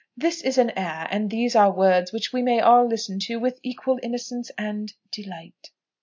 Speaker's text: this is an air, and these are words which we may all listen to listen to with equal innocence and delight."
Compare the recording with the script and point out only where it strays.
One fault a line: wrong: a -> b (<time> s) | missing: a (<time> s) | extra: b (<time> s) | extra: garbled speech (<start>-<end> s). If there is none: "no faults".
missing: listen to (3.4 s)